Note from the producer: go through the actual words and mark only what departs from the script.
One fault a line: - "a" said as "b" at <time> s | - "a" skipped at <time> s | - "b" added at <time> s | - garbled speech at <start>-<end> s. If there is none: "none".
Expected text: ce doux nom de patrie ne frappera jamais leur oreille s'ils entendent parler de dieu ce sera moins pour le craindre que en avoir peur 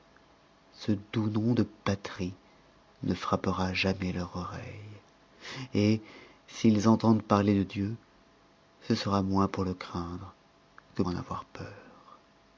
none